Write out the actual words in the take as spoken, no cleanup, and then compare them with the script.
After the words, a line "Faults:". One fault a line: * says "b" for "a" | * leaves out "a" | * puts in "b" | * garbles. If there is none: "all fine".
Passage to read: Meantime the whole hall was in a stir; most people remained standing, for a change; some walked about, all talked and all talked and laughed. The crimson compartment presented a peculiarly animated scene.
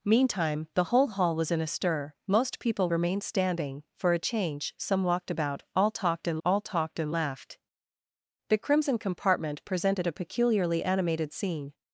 Meantime the whole hall was in a stir; most people remained standing, for a change; some walked about, all talked and all talked and laughed. The crimson compartment presented a peculiarly animated scene.
Faults:
all fine